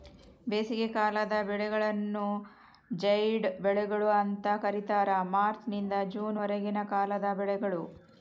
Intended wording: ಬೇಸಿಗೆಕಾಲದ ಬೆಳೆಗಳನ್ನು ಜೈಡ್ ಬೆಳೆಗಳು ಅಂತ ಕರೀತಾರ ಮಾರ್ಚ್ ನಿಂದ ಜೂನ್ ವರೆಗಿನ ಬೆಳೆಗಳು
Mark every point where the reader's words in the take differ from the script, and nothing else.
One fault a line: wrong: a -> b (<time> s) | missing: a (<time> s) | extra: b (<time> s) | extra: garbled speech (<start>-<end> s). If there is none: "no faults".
extra: ಕಾಲದ (6.9 s)